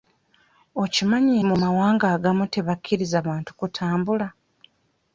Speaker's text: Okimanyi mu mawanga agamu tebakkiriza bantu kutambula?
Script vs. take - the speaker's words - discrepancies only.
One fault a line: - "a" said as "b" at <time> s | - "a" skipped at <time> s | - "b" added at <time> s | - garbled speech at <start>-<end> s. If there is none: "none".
none